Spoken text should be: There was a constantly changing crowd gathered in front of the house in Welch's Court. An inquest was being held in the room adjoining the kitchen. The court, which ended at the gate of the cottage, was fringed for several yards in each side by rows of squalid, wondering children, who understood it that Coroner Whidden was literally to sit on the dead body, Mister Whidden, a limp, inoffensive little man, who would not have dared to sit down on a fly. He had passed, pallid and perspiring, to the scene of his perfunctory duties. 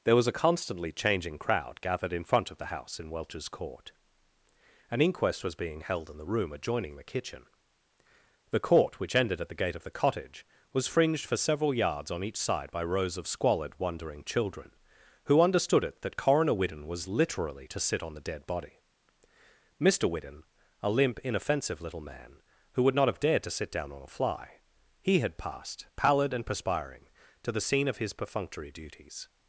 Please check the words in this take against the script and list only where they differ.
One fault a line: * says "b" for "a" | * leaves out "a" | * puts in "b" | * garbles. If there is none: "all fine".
* says "on" for "in"